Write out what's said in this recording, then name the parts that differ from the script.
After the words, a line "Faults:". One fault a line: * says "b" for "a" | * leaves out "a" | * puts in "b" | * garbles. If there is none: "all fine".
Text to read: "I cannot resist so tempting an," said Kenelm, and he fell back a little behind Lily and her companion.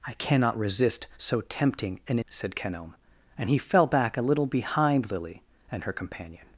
"I cannot resist so tempting an," said Kenelm, and he fell back a little behind Lily and her companion.
Faults:
all fine